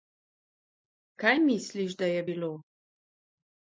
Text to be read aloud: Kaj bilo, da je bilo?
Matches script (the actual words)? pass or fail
fail